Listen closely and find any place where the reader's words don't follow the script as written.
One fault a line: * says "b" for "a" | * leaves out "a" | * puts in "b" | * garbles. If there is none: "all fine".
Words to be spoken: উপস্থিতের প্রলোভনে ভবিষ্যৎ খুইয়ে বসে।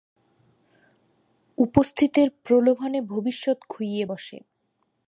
all fine